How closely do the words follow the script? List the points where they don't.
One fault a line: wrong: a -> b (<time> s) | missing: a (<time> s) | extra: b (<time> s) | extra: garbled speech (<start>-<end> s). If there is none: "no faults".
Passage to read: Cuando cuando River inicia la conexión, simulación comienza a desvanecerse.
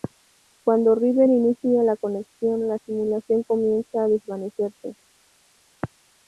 missing: cuando (0.9 s)
extra: la (2.7 s)